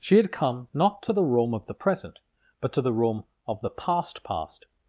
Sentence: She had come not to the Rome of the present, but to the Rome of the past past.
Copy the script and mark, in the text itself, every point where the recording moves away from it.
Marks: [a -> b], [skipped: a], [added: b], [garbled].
She had come not to the Rome of the present, but to the Rome of the past past.